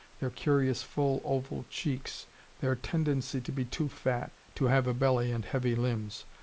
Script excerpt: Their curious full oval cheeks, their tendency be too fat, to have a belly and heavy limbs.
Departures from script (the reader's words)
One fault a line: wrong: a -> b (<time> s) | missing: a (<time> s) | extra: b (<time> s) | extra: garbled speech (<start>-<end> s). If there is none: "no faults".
extra: to (3.4 s)